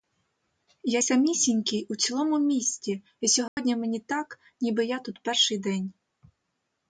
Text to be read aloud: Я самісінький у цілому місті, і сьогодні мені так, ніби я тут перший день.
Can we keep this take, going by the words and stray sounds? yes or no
no